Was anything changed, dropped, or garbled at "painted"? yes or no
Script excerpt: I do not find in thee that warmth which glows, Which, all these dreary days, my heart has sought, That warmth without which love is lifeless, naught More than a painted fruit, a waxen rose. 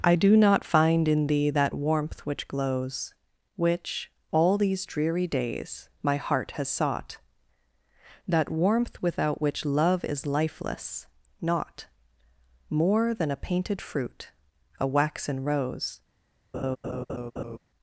no